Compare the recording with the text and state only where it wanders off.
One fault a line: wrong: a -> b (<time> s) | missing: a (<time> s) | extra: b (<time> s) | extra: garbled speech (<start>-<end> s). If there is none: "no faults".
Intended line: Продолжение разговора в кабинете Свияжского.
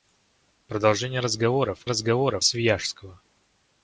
wrong: кабинете -> разговора (1.8 s)